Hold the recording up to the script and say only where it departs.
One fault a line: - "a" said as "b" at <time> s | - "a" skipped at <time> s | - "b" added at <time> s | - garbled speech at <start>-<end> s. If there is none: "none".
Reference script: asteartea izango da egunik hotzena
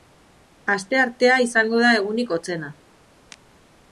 none